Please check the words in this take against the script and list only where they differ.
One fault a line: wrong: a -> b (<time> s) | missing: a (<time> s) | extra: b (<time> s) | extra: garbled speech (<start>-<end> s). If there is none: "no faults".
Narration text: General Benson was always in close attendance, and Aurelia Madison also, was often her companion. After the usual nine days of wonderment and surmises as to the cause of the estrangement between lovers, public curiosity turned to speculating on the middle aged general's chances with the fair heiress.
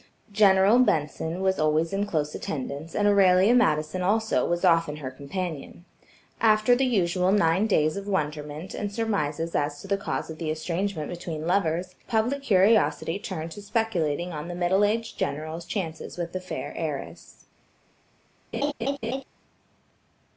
no faults